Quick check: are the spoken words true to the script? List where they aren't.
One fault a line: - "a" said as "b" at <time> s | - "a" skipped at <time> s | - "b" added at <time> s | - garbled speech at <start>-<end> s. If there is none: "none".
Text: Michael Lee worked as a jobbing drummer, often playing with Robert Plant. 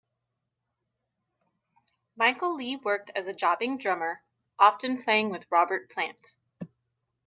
none